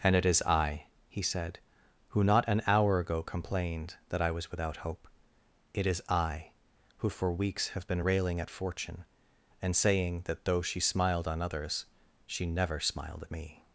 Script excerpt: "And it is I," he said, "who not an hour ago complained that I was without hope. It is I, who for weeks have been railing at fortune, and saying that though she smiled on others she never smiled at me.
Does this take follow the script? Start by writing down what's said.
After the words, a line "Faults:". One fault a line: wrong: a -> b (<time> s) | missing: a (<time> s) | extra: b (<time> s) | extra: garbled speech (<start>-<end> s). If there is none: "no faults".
"And it is I," he said, "who not an hour ago complained that I was without hope. It is I, who for weeks have been railing at fortune, and saying that though she smiled on others she never smiled at me.
Faults:
no faults